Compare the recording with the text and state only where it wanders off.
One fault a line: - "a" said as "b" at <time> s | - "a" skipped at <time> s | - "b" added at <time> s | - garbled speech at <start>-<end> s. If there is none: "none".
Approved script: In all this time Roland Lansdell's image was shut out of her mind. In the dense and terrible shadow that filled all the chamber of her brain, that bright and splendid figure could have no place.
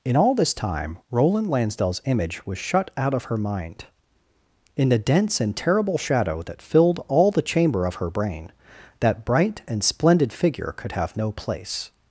none